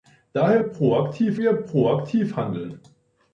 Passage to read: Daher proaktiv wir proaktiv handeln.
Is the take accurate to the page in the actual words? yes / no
yes